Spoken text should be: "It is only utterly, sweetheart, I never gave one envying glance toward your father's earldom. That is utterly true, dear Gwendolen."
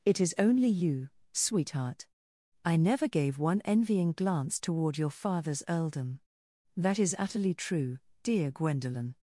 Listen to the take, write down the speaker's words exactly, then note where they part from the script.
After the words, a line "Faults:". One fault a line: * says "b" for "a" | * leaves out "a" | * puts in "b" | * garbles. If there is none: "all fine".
"It is only you, sweetheart, I never gave one envying glance toward your father's earldom. That is utterly true, dear Gwendolen."
Faults:
* says "you" for "utterly"